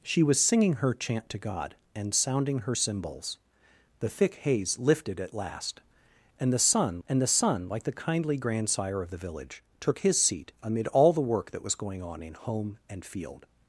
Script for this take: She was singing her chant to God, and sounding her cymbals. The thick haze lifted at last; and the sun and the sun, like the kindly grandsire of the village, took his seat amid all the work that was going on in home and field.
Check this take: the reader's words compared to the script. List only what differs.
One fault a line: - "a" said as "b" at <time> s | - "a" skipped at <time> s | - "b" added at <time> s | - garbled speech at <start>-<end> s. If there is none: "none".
none